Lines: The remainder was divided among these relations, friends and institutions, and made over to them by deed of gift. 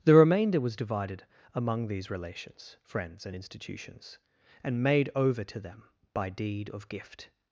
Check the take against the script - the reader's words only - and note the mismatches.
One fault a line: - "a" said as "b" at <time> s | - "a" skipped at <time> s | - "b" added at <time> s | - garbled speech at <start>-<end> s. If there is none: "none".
none